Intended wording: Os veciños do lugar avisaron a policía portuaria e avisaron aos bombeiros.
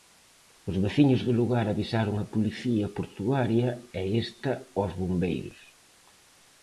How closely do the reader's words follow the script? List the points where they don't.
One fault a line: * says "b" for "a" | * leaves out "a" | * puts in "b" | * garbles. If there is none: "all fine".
* says "esta" for "avisaron"